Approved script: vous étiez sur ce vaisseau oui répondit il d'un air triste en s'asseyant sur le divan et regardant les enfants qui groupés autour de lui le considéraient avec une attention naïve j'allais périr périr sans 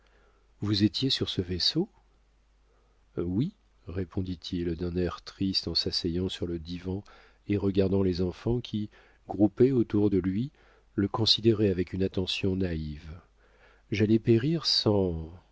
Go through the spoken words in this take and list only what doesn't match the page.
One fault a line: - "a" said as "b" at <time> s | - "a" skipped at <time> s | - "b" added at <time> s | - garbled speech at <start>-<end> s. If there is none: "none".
- "périr" skipped at 14.7 s